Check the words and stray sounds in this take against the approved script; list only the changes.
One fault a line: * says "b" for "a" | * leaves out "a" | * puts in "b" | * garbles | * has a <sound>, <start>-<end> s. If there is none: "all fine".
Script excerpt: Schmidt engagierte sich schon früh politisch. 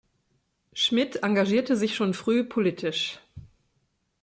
all fine